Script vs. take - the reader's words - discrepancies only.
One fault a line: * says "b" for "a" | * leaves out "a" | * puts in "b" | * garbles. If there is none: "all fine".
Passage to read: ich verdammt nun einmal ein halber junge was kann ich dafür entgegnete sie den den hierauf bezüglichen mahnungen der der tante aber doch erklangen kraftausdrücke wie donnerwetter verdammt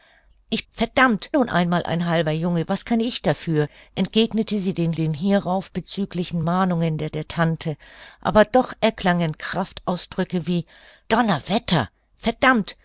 all fine